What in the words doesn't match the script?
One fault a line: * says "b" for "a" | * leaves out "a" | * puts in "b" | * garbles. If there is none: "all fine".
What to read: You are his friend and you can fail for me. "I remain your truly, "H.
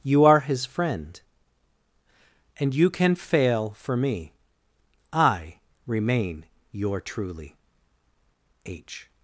all fine